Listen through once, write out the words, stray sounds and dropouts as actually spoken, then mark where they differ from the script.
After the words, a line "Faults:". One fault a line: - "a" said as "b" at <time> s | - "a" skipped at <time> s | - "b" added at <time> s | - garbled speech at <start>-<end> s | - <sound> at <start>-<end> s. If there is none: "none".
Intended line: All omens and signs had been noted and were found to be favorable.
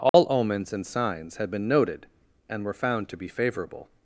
All omens and signs had been noted and were found to be favorable.
Faults:
- dropout at 0.1-0.1 s